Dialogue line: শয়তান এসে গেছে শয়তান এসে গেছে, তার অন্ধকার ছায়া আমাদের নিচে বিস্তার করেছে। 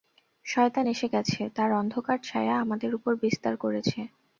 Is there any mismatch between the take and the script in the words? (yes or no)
yes